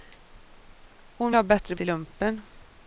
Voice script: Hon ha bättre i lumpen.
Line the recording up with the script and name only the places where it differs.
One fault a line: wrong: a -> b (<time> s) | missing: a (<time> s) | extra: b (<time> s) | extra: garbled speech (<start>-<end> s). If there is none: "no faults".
no faults